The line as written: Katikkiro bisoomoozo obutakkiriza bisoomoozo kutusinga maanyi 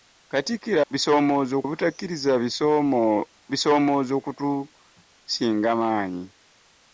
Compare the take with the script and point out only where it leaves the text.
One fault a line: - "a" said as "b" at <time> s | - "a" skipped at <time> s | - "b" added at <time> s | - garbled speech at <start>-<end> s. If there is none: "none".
none